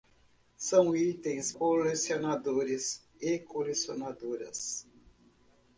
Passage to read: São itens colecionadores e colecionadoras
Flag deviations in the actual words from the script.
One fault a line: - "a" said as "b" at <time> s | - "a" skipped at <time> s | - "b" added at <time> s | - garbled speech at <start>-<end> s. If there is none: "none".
none